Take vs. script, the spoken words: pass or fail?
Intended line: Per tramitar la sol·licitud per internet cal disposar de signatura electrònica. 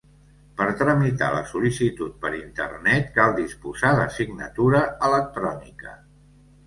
pass